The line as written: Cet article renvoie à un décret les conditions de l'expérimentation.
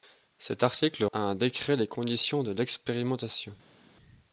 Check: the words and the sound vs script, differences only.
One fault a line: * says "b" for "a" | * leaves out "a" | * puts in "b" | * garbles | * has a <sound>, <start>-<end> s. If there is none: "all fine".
* leaves out "renvoie"